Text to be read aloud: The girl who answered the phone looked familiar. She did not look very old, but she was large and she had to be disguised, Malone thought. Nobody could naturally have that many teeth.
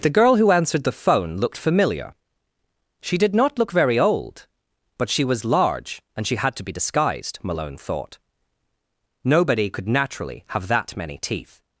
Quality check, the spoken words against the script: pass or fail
pass